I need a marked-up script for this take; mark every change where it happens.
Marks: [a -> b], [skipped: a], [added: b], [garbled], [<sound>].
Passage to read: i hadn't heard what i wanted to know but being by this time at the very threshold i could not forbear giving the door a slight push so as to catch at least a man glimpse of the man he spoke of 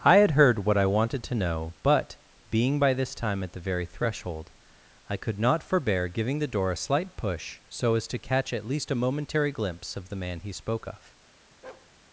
i [hadn't -> had] heard what i wanted to know but being by this time at the very threshold i could not forbear giving the door a slight push so as to catch at least a [man -> momentary] glimpse of the man he spoke of [bark]